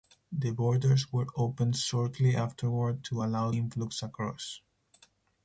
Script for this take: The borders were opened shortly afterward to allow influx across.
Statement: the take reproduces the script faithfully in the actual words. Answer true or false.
true